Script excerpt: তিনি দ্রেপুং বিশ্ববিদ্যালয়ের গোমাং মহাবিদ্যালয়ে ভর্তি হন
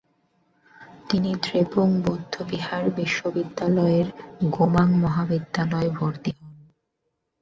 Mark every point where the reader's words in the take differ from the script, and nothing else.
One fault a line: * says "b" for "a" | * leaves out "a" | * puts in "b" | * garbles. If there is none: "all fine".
* puts in "বৌদ্ধবিহার"